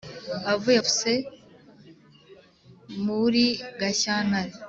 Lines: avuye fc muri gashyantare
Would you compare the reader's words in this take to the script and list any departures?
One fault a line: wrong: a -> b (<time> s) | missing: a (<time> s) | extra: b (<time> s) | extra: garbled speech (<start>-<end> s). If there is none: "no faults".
no faults